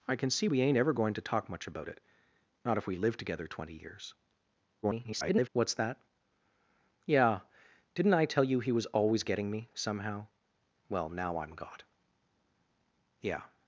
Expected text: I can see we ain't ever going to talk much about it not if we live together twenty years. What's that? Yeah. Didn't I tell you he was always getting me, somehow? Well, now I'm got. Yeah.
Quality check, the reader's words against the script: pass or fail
fail